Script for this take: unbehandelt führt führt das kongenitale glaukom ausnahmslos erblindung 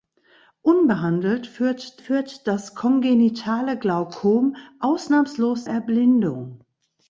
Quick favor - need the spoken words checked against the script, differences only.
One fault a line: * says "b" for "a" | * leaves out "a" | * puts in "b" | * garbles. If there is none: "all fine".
all fine